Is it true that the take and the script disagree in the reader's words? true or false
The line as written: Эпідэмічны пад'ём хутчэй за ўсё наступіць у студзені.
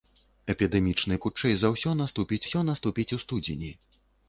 true